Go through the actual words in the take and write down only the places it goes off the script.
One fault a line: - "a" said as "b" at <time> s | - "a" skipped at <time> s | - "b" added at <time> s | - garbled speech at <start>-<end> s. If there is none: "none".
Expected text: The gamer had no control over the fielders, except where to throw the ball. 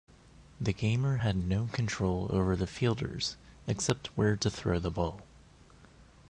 none